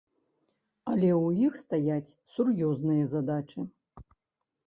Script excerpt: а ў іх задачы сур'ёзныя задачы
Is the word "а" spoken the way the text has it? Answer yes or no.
no